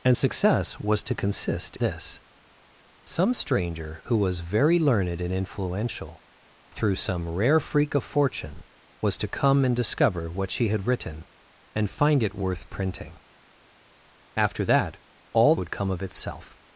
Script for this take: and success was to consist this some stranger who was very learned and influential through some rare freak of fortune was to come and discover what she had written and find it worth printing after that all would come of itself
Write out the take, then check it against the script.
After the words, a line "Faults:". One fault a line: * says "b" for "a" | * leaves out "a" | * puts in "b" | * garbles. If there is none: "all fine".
and success was to consist this some stranger who was very learned and influential through some rare freak of fortune was to come and discover what she had written and find it worth printing after that all would come of itself
Faults:
all fine